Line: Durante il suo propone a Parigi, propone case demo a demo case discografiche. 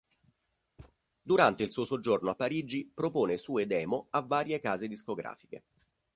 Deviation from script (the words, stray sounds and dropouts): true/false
true